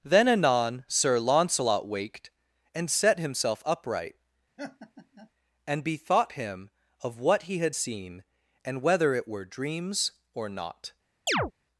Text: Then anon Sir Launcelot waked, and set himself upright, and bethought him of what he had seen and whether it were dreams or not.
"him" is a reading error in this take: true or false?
false